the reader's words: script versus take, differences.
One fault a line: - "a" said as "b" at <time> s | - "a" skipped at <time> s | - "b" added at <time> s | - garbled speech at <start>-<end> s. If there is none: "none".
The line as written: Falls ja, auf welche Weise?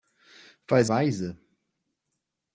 - "ja auf welche" skipped at 0.9 s